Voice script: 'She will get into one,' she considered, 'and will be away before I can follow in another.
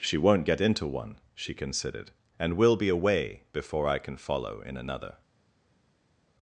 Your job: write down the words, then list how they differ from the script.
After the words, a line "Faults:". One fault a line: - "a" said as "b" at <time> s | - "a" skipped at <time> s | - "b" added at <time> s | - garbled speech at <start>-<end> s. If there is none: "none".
'She won't get into one,' she considered, 'and will be away before I can follow in another.
Faults:
- "will" said as "won't" at 0.2 s